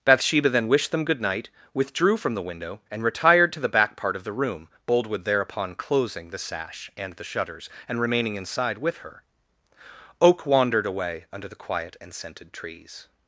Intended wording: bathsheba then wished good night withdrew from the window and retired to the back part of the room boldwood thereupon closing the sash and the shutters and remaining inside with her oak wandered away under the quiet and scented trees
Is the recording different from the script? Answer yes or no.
yes